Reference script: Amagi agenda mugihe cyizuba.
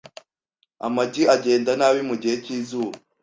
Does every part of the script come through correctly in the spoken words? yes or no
no